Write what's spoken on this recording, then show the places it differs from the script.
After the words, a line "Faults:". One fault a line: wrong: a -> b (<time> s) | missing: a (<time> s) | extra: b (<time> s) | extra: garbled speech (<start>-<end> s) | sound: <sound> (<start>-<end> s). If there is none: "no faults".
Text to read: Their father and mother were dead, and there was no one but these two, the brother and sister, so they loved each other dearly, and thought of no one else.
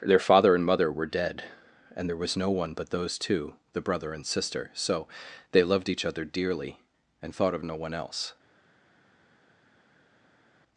Their father and mother were dead, and there was no one but those two, the brother and sister, so they loved each other dearly, and thought of no one else.
Faults:
wrong: these -> those (2.9 s)